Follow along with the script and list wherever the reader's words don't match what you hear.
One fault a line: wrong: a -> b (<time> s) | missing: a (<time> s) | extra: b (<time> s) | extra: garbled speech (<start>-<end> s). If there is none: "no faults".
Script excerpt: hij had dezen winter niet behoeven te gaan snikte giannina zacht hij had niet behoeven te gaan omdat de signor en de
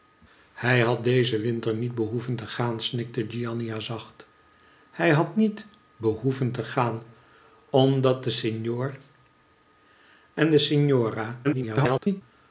extra: garbled speech (11.4-12.2 s)